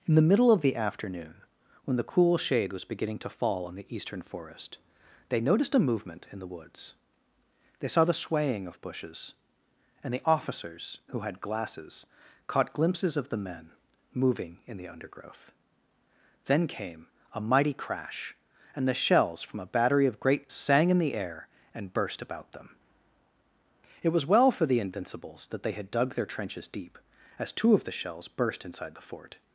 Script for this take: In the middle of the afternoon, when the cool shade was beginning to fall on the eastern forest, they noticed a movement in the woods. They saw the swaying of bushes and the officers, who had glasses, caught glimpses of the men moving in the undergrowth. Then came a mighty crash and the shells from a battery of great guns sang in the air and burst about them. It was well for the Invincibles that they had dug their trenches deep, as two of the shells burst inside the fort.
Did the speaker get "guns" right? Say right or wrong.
wrong